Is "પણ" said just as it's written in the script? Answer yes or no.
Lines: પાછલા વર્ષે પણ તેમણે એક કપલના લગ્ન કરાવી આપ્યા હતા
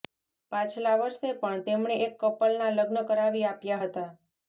yes